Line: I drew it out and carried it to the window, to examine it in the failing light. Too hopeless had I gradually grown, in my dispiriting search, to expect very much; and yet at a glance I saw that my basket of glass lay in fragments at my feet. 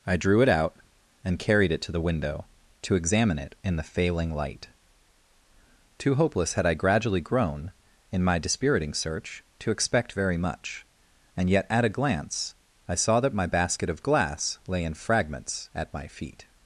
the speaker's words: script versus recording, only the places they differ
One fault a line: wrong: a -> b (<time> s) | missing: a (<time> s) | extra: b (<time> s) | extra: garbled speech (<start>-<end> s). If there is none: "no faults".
no faults